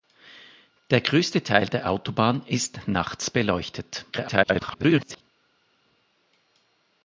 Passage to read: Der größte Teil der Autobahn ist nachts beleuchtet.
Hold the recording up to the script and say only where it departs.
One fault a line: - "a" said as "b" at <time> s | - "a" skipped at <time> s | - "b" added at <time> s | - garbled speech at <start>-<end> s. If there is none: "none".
- garbled speech at 4.1-5.2 s